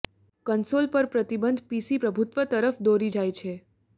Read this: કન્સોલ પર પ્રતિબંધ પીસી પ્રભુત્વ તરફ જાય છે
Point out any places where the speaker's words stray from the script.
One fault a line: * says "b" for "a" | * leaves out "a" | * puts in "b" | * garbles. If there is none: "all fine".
* puts in "દોરી"